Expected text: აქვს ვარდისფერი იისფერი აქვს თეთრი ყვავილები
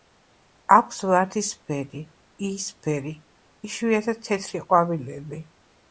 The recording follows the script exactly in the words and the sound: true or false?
false